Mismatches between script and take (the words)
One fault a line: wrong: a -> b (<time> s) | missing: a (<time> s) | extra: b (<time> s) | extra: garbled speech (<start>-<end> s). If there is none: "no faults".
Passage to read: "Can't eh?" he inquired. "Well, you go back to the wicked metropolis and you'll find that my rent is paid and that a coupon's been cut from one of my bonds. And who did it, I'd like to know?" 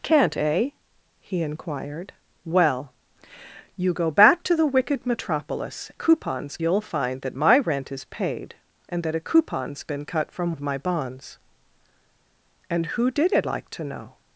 wrong: and -> coupon's (5.9 s)
missing: one (10.5 s)
missing: I'd (13.5 s)